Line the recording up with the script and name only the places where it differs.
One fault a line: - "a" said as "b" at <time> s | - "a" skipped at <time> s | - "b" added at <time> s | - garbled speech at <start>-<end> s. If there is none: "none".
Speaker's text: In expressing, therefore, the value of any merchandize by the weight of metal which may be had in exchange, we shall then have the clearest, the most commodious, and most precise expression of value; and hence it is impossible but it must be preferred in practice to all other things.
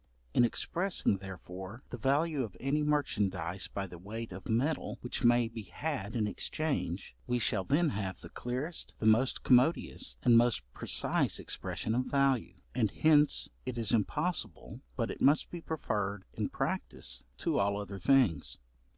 none